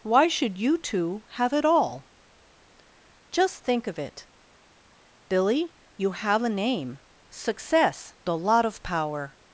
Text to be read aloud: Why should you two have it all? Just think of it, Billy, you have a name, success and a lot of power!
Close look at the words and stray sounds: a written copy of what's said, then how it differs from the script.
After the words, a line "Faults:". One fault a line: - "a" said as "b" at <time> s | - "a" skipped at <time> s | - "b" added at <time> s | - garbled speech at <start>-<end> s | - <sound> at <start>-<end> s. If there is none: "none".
Why should you two have it all? Just think of it, Billy, you have a name, success a lot of power!
Faults:
- "and" skipped at 8.1 s